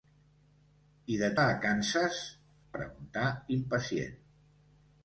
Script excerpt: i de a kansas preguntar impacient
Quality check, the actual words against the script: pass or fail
pass